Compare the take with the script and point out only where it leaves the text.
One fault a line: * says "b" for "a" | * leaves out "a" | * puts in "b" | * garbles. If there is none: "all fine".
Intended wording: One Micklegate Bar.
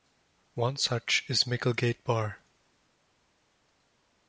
* puts in "such is"